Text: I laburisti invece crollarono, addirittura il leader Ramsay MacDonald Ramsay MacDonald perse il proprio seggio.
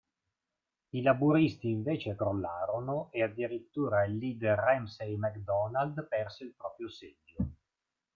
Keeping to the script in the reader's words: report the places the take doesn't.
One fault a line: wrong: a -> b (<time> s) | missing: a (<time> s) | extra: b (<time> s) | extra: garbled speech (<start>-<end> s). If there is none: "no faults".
extra: e (3.1 s)
missing: Ramsay MacDonald (6.1 s)